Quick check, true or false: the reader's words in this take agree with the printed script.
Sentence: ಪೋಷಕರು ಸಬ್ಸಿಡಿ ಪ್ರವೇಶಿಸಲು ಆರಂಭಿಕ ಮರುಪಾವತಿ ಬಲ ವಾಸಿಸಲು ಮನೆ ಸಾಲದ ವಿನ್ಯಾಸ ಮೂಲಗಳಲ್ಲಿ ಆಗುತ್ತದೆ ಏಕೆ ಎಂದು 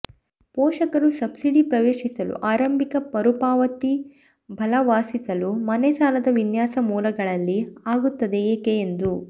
true